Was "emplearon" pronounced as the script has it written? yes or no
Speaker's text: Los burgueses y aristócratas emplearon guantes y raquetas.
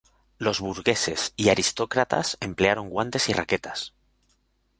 yes